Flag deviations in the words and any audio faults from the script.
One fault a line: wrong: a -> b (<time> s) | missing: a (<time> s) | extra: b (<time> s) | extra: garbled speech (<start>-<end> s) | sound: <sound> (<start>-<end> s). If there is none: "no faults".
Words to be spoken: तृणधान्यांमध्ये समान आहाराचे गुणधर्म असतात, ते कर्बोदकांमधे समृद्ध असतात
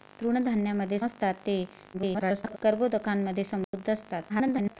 missing: समान आहाराचे गुणधर्म (1.0 s)
extra: garbled speech (1.9-2.6 s)
sound: dropout (3.6-3.7 s)
extra: garbled speech (4.3-4.8 s)